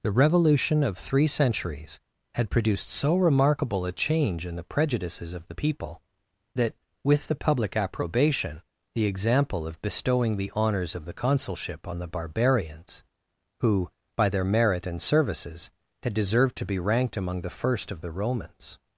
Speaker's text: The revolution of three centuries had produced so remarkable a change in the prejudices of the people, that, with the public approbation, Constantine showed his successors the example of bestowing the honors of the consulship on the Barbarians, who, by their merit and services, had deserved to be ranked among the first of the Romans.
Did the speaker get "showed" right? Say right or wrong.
wrong